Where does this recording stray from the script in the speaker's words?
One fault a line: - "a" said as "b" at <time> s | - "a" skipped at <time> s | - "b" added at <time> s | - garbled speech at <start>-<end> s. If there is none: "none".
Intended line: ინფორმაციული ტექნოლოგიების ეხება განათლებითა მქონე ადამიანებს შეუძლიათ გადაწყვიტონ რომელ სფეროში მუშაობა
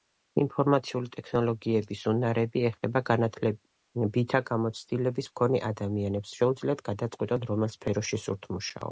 - "უნარები" added at 2.1 s
- "გამოცდილების" added at 4.5 s
- "სურთ" added at 8.3 s